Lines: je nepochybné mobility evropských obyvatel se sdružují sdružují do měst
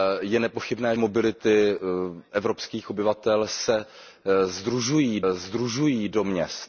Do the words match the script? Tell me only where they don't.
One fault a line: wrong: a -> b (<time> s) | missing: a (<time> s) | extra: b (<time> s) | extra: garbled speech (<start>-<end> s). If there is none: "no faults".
no faults